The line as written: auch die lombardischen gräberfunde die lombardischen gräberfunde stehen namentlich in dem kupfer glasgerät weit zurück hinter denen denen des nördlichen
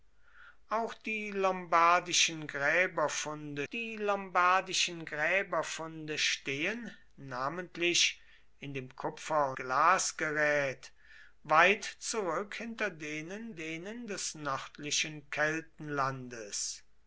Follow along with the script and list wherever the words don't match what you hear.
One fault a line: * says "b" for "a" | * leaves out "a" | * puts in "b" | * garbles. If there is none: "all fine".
all fine